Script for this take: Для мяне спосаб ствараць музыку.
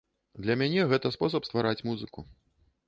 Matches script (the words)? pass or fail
fail